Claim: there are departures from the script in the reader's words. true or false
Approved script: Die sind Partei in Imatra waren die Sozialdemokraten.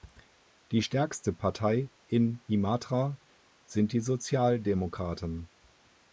true